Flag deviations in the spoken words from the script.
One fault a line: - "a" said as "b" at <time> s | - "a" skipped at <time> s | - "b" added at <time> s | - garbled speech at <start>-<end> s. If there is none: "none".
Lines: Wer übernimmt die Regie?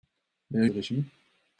- "übernimmt" skipped at 0.7 s